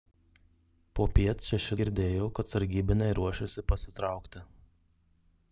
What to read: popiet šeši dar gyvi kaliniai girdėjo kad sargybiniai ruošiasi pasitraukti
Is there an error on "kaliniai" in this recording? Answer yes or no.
yes